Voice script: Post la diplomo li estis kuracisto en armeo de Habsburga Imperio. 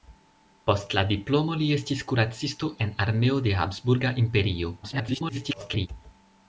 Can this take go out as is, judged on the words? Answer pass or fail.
fail